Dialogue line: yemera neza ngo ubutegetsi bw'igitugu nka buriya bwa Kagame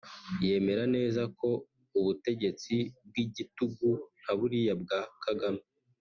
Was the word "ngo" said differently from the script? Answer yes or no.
yes